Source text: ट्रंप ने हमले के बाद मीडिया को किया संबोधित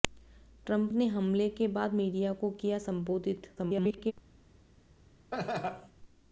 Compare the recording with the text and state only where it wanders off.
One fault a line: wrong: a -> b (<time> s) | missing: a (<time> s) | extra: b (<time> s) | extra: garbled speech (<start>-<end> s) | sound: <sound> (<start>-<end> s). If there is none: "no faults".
extra: garbled speech (3.6-4.1 s)
sound: laugh (5.3-5.9 s)